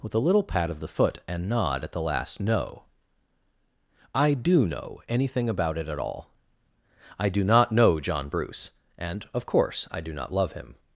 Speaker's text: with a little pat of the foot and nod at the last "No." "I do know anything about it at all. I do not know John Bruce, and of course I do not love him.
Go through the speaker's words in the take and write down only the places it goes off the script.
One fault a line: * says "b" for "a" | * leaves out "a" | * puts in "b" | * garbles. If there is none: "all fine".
all fine